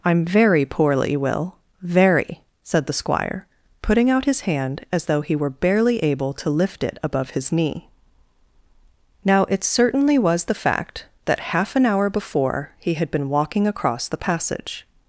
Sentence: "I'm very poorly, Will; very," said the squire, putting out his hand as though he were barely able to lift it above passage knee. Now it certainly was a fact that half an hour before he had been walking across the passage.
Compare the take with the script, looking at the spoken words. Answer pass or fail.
fail